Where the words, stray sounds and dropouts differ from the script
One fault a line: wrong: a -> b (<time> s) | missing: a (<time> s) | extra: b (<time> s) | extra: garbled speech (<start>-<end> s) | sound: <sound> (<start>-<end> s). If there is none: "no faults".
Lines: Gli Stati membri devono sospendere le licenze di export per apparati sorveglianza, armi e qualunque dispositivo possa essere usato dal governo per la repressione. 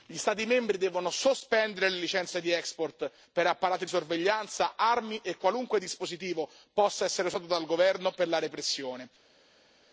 no faults